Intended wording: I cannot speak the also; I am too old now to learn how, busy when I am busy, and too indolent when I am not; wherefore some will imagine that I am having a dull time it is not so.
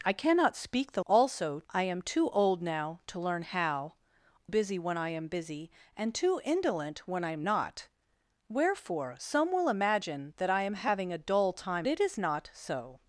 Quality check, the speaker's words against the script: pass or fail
pass